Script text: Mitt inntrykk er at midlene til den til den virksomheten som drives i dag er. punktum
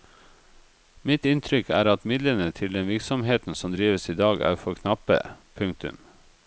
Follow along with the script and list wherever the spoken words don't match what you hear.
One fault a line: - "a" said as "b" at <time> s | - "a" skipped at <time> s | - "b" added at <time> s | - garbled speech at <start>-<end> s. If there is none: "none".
- "til den" skipped at 2.9 s
- "for knappe" added at 4.5 s